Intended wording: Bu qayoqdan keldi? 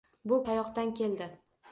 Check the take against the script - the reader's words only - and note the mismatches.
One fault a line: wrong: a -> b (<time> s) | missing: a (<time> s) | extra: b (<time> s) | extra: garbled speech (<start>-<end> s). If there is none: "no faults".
no faults